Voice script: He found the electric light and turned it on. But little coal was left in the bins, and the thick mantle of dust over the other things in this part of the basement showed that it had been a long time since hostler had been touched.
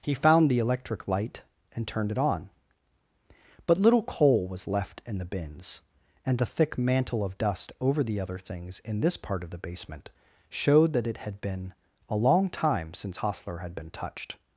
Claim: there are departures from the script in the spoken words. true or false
false